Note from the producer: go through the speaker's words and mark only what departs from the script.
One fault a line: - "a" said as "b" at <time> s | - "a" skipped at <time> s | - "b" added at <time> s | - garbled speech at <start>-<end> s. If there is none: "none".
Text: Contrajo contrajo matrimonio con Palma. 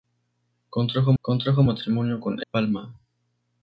none